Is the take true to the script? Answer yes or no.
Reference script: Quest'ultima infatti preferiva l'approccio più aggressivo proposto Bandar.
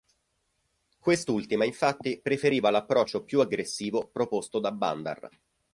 no